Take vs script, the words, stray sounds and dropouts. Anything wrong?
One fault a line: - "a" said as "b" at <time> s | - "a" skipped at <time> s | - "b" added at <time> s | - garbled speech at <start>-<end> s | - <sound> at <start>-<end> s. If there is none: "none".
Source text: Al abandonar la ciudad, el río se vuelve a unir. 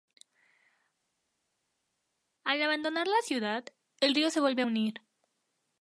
none